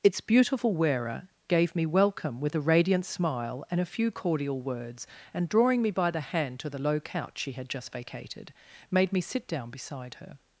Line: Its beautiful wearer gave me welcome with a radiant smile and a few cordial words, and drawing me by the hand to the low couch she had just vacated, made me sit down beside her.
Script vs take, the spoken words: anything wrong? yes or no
no